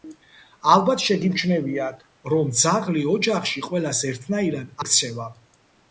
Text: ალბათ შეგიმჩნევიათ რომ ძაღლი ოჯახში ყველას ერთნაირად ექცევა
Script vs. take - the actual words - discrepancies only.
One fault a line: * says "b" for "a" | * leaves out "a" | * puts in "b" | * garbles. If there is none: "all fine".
all fine